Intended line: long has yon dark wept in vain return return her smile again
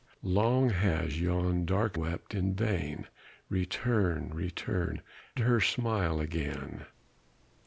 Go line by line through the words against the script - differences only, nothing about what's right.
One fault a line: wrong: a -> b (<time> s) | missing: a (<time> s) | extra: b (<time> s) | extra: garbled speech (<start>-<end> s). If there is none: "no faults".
no faults